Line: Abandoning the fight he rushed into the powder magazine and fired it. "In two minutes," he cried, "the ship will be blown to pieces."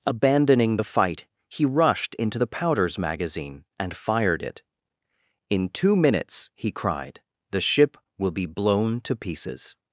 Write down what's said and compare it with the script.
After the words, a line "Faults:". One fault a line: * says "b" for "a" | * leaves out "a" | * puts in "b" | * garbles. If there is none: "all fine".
Abandoning the fight he rushed into the powders magazine and fired it. "In two minutes," he cried, "the ship will be blown to pieces."
Faults:
* says "powders" for "powder"